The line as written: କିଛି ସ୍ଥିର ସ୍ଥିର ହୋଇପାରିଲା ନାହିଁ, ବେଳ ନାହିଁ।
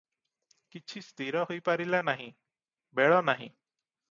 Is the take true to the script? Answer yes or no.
no